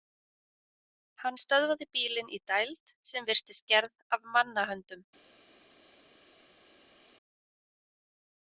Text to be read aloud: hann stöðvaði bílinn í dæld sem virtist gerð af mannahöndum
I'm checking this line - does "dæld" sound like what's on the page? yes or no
yes